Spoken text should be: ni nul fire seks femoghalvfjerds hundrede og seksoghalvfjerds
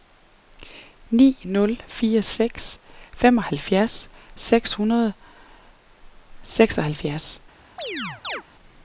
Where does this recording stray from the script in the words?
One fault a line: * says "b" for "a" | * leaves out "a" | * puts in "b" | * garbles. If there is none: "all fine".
* puts in "seks"